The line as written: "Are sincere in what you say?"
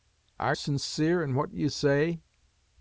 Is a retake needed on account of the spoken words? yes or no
no